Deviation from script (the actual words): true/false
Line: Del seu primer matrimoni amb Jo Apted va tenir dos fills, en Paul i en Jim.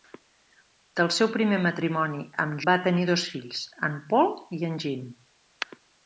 true